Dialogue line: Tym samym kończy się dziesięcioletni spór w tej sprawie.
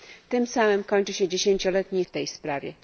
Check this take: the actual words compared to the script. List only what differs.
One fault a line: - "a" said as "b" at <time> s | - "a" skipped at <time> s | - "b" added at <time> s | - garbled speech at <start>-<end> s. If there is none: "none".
- "spór" skipped at 2.0 s